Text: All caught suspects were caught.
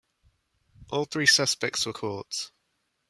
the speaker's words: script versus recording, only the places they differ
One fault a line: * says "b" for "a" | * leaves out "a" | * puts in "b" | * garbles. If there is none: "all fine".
* says "three" for "caught"